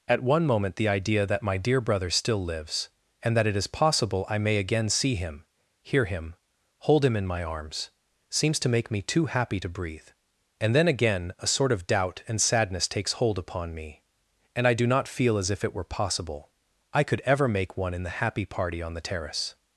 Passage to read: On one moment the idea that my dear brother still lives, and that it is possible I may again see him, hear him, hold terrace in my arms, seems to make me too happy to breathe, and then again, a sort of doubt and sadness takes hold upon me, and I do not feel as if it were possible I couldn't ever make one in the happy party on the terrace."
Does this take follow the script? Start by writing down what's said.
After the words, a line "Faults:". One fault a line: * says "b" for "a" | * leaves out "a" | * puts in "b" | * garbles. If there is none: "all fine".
At one moment the idea that my dear brother still lives, and that it is possible I may again see him, hear him, hold him in my arms, seems to make me too happy to breathe, and then again, a sort of doubt and sadness takes hold upon me, and I do not feel as if it were possible I could ever make one in the happy party on the terrace."
Faults:
* says "At" for "On"
* says "him" for "terrace"
* says "could" for "couldn't"